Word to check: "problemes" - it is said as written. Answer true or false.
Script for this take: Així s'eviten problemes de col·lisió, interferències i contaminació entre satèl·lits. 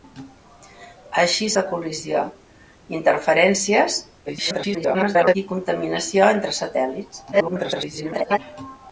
false